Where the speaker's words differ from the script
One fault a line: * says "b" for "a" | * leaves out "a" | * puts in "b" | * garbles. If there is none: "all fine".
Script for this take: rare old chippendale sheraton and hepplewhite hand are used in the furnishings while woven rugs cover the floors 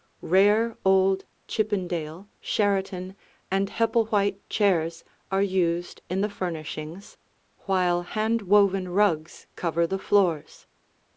* says "chairs" for "hand"
* puts in "hand"